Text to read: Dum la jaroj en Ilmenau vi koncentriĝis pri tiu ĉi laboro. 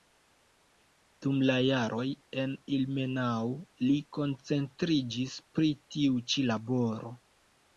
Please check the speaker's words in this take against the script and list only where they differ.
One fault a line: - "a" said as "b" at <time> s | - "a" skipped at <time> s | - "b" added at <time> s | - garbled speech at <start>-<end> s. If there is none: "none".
- "vi" said as "li" at 3.8 s